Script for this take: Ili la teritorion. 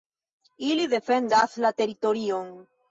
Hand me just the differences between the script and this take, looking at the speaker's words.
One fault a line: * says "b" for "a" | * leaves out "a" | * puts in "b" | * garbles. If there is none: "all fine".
* puts in "defendas"